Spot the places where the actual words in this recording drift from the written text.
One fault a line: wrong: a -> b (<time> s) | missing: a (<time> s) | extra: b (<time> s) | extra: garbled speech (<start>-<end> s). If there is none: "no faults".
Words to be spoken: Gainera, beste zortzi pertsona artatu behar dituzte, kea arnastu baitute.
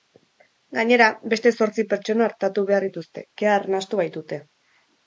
no faults